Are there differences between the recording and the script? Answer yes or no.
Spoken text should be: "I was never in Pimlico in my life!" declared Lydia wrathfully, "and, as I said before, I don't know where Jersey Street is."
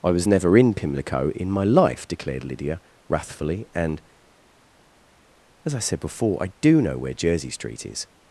yes